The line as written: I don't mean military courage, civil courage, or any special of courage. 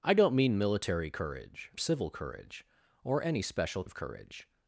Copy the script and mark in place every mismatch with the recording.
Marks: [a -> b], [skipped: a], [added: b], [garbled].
I don't mean military courage, civil courage, or any special of courage.